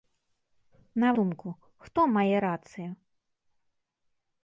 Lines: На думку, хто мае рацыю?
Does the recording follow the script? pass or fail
pass